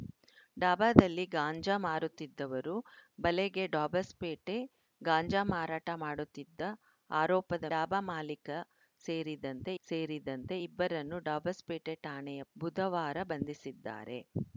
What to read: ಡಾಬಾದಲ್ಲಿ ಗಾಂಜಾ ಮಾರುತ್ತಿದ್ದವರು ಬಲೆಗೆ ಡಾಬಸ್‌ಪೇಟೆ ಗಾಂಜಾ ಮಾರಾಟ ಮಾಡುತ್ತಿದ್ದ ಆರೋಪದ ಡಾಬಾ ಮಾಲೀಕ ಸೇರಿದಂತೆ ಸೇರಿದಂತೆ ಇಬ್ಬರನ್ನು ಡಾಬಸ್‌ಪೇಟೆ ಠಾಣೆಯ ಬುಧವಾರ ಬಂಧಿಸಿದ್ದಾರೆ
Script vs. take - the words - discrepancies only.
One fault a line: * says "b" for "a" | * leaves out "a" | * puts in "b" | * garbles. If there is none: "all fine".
all fine